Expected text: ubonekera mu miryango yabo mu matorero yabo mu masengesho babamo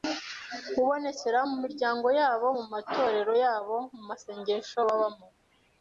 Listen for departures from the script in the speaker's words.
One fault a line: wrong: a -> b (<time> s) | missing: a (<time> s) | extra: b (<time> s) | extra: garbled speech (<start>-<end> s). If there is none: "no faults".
no faults